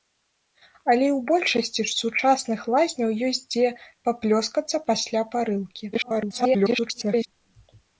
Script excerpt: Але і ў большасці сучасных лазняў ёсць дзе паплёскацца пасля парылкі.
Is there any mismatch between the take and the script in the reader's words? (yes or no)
yes